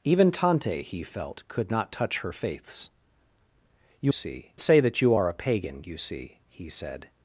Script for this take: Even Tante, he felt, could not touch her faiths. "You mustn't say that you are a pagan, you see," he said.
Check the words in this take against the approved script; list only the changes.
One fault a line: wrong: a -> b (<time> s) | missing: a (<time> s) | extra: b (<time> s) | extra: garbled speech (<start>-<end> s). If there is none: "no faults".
wrong: mustn't -> see (4.1 s)